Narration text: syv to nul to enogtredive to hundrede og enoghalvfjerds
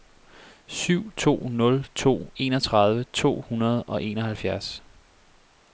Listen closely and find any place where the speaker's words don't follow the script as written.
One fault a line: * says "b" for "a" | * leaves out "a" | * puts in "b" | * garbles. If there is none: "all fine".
all fine